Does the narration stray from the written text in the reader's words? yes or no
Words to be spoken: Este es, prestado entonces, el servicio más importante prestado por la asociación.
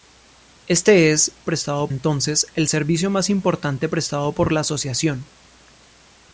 no